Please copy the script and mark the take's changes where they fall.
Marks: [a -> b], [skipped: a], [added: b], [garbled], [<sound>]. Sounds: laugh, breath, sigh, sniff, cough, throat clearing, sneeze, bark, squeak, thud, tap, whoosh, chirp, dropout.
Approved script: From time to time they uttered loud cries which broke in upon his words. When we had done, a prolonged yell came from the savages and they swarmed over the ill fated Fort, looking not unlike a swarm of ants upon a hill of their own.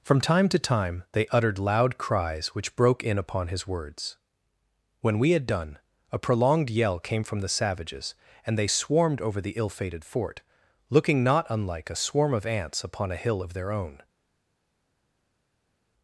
From time to time they uttered loud cries which broke in upon his words. When we had done, a prolonged yell came from the savages and they swarmed over the ill fated Fort, looking not unlike a swarm of ants upon a hill of their own.